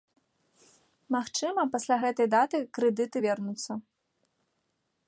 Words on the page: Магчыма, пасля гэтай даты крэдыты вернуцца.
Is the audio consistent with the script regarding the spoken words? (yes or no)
yes